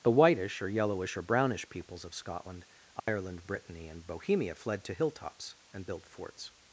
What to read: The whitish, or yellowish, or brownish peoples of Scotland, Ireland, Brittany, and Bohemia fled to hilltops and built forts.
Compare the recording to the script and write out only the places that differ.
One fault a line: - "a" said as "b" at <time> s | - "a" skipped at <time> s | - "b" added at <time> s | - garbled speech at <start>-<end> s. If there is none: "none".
none